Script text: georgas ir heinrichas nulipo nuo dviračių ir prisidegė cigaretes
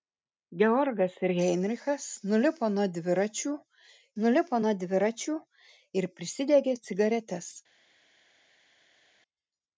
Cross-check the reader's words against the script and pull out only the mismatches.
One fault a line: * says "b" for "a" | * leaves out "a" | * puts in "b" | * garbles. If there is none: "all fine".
* puts in "nulipo nuo dviračių"